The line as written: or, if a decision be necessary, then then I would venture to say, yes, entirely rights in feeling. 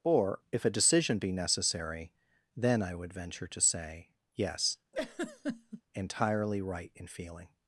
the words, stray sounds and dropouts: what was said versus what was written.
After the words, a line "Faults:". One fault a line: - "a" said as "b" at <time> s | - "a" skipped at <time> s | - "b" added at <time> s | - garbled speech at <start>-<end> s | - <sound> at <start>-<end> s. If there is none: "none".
or, if a decision be necessary, then I would venture to say, yes, entirely right in feeling.
Faults:
- "then" skipped at 2.8 s
- laugh at 4.9-5.8 s
- "rights" said as "right" at 6.6 s